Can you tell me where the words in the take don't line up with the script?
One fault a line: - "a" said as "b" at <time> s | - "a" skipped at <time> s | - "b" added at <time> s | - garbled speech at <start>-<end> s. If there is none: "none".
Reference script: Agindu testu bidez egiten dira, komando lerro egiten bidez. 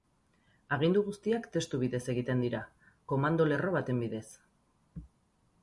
- "guztiak" added at 1.1 s
- "egiten" said as "baten" at 3.8 s